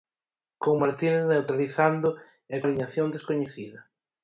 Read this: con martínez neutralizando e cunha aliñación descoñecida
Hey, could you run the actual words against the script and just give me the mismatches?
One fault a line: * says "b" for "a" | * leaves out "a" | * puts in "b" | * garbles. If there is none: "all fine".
* leaves out "cunha"